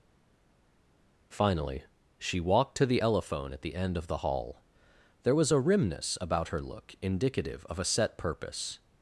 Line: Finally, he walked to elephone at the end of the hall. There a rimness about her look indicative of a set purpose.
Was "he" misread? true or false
true